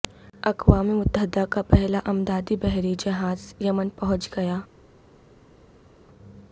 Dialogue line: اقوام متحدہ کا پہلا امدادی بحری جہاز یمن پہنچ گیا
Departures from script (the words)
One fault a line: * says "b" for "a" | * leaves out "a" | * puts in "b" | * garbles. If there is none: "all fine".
all fine